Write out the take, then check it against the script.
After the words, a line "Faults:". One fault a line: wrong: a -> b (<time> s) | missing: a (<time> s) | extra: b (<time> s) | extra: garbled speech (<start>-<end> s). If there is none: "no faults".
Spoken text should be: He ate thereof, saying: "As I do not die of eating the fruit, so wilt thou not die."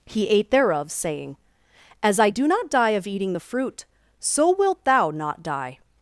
He ate thereof, saying: "As I do not die of eating the fruit, so wilt thou not die."
Faults:
no faults